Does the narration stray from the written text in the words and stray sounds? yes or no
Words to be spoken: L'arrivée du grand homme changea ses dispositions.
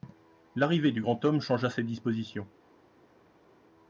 no